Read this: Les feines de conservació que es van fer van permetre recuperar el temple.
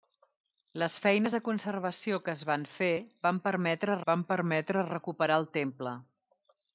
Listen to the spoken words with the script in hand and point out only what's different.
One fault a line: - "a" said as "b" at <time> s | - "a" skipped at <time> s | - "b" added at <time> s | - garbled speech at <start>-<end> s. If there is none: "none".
- "van permetre" added at 4.1 s